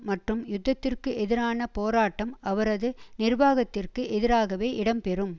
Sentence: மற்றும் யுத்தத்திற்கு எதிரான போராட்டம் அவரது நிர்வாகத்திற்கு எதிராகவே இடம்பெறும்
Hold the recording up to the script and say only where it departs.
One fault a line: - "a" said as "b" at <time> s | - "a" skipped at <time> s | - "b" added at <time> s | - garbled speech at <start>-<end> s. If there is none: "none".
none